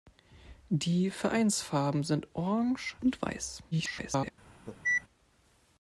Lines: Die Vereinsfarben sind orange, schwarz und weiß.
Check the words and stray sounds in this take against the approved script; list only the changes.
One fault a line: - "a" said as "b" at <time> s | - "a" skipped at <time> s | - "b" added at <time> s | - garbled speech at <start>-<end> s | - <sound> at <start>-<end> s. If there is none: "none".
- "schwarz" skipped at 3.0 s
- garbled speech at 3.7-4.3 s
- cough at 4.7-5.0 s